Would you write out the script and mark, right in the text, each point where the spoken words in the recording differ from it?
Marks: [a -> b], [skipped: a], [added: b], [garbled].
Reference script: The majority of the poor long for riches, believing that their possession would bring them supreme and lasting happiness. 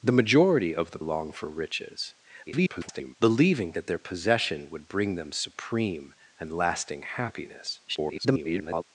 The majority of the [skipped: poor] long for riches, [garbled] believing that their possession would bring them supreme and lasting happiness. [garbled]